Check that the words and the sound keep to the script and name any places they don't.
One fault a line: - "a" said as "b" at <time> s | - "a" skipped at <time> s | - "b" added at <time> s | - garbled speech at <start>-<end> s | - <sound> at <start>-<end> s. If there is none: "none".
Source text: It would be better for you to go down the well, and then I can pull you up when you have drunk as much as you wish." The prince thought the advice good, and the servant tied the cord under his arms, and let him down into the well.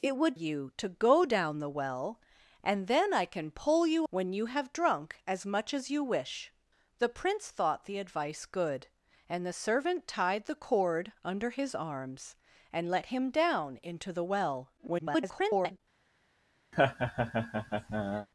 - "be better for" skipped at 0.3 s
- "up" skipped at 4.1 s
- garbled speech at 14.8-15.8 s
- laugh at 16.7-18.3 s